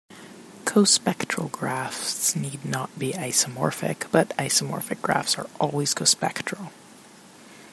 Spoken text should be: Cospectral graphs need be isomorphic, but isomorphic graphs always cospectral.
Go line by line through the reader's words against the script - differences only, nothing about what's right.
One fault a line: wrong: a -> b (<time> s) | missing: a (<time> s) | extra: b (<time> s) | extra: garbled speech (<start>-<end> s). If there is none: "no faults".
extra: not (2.6 s)
extra: are (5.4 s)